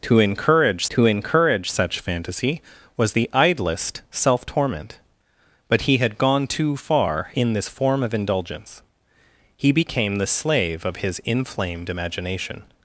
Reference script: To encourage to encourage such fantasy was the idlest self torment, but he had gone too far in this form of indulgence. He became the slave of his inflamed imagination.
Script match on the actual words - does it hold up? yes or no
yes